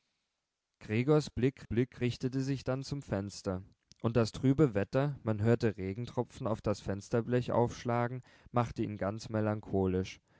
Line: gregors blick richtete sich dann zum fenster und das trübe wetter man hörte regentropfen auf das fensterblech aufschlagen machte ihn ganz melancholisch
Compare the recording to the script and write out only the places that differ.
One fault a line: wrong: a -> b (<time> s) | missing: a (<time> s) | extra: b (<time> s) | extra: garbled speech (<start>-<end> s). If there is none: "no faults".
extra: blick (1.6 s)